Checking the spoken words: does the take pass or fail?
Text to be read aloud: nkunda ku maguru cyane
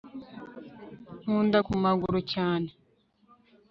pass